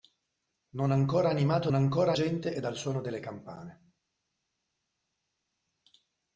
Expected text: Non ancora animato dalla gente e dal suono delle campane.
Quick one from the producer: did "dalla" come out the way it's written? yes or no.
no